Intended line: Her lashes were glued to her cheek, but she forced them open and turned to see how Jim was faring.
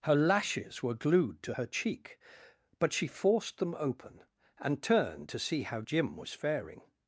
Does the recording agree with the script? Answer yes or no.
yes